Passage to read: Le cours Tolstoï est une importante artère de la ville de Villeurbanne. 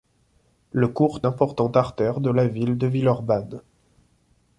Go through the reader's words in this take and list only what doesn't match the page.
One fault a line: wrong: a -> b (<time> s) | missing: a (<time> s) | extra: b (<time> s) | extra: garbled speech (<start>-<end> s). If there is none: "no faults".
missing: Tolstoï est une (1.2 s)